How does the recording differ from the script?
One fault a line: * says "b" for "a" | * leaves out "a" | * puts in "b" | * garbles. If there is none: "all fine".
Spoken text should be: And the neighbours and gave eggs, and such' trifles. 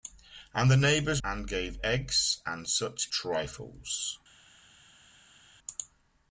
all fine